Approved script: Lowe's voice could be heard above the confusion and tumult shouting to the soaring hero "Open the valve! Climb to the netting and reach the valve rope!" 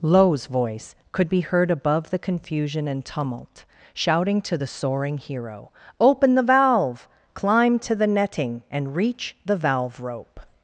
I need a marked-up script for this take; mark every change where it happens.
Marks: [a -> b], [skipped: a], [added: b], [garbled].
Lowe's voice could be heard above the confusion and tumult shouting to the soaring hero "Open the valve! Climb to the netting and reach the valve rope!"